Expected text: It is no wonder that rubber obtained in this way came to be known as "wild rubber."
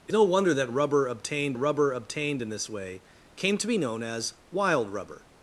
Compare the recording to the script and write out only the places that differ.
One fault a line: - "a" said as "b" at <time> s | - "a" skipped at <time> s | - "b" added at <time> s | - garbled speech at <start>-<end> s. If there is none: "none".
- "is" skipped at 0.1 s
- "rubber obtained" added at 1.6 s